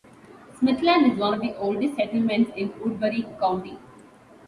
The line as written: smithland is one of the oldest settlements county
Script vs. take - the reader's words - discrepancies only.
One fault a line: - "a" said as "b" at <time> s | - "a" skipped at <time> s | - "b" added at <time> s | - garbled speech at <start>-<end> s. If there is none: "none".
- "in woodbury" added at 2.6 s